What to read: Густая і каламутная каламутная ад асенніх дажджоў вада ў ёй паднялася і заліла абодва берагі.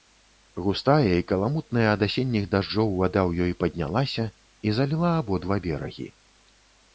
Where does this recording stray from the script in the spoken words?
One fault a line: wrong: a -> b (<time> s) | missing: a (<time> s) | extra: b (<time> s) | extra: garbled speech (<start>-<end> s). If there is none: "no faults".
missing: каламутная (1.8 s)